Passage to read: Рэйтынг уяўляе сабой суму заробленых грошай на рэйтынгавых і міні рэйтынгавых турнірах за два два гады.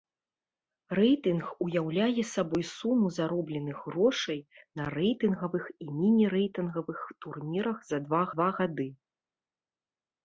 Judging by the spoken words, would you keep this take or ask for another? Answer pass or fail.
pass